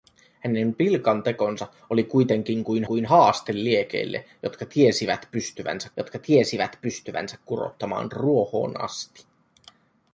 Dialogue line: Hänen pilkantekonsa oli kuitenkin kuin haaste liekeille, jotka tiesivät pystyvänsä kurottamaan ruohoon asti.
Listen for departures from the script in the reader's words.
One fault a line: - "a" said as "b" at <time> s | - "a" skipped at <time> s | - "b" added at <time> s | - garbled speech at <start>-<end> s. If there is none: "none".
- "kuin" added at 2.8 s
- "jotka tiesivät pystyvänsä" added at 6.0 s